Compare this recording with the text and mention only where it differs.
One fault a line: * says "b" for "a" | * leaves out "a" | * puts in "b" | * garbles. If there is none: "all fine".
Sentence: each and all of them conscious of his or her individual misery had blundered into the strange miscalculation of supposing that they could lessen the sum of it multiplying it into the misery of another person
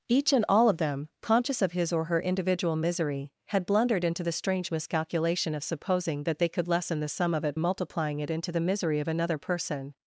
all fine